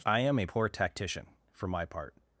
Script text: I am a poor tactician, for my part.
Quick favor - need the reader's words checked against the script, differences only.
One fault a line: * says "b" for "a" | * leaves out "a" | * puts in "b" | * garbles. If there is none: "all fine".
all fine